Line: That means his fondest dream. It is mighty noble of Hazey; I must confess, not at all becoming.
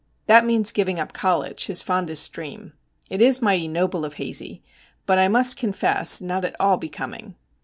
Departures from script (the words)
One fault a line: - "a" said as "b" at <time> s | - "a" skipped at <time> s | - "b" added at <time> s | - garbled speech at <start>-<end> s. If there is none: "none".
- "giving up college" added at 0.7 s
- "but" added at 5.0 s